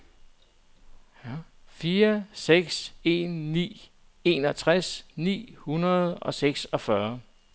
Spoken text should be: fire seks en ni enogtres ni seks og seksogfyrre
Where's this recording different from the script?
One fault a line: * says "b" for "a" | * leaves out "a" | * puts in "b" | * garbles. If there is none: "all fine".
* says "hundrede" for "seks"